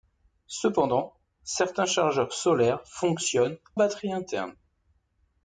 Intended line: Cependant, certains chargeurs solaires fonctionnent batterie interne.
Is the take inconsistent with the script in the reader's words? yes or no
no